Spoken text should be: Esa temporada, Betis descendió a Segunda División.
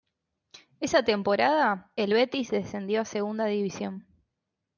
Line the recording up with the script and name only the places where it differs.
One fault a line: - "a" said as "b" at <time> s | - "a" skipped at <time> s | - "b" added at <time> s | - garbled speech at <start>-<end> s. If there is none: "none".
- "el" added at 2.0 s